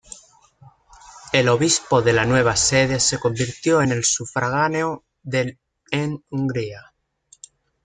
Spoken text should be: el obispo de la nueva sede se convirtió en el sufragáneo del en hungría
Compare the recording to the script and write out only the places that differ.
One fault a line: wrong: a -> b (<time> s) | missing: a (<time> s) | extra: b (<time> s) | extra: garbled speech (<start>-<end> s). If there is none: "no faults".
no faults